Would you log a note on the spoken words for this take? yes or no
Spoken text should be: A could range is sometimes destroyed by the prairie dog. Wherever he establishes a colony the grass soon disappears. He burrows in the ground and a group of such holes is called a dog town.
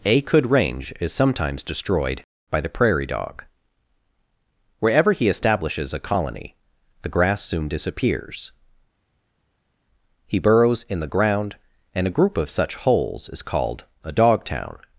no